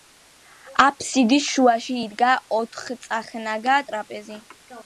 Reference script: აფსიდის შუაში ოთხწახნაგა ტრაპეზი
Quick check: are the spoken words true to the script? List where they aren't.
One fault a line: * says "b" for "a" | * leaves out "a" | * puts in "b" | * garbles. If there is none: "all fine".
* puts in "იდგა"